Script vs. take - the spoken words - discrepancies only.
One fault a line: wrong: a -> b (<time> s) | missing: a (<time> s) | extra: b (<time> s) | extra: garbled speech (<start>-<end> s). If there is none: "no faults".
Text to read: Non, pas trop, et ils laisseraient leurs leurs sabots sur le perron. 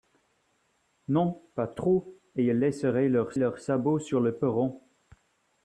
no faults